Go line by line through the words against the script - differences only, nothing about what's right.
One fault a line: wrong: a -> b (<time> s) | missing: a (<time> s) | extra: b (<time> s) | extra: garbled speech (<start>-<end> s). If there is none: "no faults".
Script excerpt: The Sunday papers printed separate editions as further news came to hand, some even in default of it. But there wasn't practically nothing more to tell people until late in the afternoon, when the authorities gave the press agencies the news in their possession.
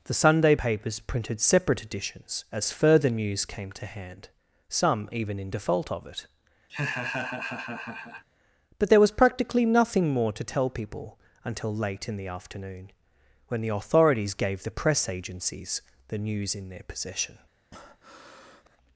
wrong: wasn't -> was (9.0 s)